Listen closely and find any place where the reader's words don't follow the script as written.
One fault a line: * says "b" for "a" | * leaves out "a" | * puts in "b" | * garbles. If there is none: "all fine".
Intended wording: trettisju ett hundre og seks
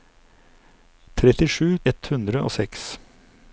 all fine